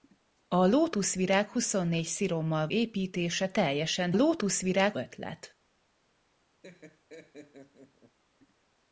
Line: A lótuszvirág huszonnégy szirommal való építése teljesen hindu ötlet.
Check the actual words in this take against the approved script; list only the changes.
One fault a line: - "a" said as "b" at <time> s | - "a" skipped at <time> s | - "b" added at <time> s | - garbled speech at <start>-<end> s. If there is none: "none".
- "való" skipped at 2.7 s
- "hindu" said as "lótuszvirág" at 4.1 s